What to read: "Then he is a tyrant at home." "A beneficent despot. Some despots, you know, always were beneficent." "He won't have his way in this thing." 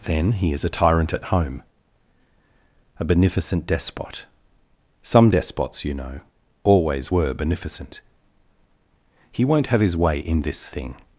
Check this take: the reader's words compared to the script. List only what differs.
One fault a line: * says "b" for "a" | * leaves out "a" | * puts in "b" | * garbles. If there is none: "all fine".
all fine